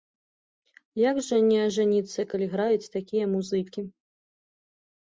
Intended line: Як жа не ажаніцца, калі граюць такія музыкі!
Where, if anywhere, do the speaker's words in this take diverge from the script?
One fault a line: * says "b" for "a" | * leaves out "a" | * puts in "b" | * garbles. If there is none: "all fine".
all fine